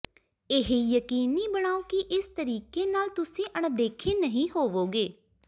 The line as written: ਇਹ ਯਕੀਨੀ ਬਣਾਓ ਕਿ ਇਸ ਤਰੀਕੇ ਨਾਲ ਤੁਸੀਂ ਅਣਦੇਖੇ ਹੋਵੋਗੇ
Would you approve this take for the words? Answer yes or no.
no